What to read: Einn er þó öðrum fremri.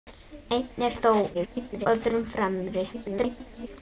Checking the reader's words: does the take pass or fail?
fail